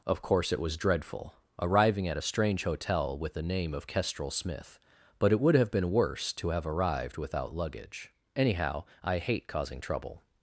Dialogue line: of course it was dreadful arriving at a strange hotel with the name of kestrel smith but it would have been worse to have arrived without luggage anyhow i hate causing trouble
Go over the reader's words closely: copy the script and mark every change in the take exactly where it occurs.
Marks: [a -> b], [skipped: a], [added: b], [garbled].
of course it was dreadful arriving at a strange hotel with the name of kestrel smith but it would have been worse to have arrived without luggage anyhow i hate causing trouble